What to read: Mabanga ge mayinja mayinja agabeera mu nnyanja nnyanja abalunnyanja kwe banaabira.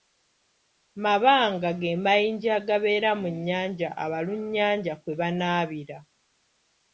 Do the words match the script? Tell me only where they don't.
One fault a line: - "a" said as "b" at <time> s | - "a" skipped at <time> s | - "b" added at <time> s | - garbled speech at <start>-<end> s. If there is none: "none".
- "mayinja" skipped at 2.5 s
- "nnyanja" skipped at 3.9 s